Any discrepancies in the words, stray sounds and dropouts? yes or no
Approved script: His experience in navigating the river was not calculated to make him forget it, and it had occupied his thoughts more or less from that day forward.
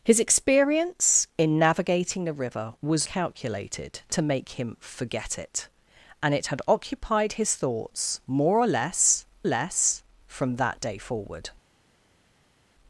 yes